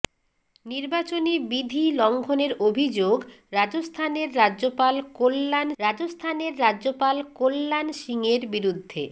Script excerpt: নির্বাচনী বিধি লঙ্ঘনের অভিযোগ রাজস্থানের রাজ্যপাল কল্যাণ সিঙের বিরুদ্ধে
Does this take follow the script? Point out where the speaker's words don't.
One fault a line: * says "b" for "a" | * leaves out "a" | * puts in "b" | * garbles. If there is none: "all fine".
* puts in "রাজস্থানের রাজ্যপাল কল্যাণ"